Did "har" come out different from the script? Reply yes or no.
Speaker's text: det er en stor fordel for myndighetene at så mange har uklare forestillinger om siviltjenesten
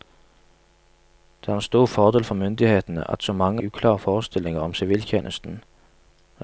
yes